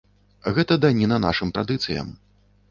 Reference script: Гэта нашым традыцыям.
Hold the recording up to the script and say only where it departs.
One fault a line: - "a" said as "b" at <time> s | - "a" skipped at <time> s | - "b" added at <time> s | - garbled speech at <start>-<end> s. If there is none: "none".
- "даніна" added at 0.9 s